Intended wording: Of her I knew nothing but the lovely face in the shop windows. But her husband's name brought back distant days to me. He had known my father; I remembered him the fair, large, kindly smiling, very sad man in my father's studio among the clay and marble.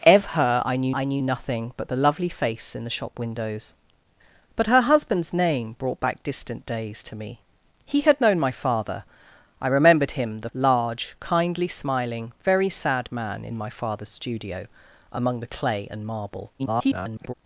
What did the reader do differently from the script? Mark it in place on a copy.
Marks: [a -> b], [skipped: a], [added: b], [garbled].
Of her I knew [added: I knew] nothing but the lovely face in the shop windows. But her husband's name brought back distant days to me. He had known my father; I remembered him the [skipped: fair,] large, kindly smiling, very sad man in my father's studio among the clay and marble. [garbled]